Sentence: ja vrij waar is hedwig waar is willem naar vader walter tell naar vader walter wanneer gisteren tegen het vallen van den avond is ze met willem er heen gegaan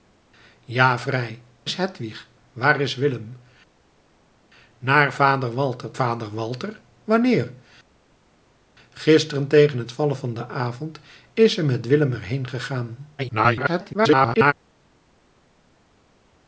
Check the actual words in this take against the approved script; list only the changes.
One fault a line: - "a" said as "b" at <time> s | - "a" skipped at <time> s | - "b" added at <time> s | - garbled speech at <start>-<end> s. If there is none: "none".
- "waar" skipped at 1.4 s
- "tell naar" skipped at 5.9 s
- garbled speech at 13.2-14.5 s